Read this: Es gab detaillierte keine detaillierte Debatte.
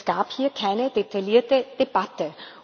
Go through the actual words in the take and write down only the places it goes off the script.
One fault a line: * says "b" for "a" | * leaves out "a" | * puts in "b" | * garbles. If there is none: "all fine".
* says "hier" for "detaillierte"